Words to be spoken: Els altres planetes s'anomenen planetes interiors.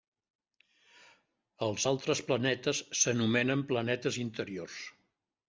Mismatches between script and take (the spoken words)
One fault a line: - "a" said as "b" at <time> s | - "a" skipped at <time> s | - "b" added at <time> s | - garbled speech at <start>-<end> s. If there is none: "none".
none